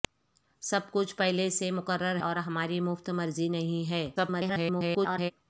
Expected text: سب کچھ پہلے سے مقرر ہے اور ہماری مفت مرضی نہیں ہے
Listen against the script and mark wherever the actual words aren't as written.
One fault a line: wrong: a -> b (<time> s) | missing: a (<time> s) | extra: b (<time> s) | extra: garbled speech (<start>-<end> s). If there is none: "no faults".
missing: ہے (2.2 s)
extra: garbled speech (4.2-5.3 s)